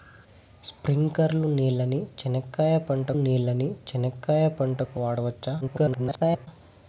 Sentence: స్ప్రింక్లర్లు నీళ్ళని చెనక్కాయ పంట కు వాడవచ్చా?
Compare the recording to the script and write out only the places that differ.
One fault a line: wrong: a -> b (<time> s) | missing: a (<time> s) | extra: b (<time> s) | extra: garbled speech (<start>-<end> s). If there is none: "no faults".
extra: నీళ్ళని చెనక్కాయ పంట (3.2 s)
extra: garbled speech (5.6-6.5 s)